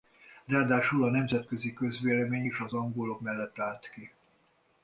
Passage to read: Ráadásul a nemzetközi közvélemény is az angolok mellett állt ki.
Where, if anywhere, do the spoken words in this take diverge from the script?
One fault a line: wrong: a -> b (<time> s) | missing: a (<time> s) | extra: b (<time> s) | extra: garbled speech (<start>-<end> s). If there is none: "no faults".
no faults